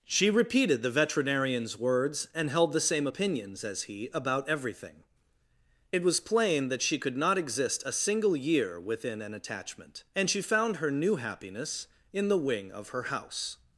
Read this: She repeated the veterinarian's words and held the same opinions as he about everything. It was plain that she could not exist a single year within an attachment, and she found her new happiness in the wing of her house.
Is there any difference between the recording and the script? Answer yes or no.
no